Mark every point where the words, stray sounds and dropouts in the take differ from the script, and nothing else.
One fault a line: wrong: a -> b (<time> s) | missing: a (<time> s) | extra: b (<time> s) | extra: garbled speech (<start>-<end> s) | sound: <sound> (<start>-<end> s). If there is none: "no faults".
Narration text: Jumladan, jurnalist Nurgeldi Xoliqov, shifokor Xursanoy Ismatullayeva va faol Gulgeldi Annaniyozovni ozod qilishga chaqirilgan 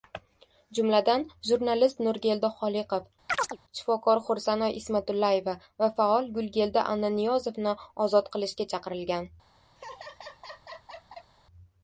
sound: chirp (3.3-3.6 s)
sound: laugh (9.8-11.3 s)